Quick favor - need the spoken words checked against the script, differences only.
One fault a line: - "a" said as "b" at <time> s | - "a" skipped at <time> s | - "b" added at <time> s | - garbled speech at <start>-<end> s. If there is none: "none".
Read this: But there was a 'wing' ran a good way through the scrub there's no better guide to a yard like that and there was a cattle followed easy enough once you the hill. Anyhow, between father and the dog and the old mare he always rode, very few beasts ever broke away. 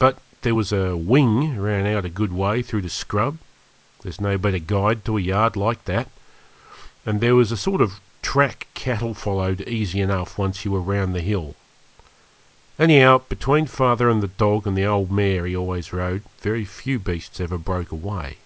- "out" added at 1.8 s
- "sort of track" added at 7.6 s
- "were round" added at 10.7 s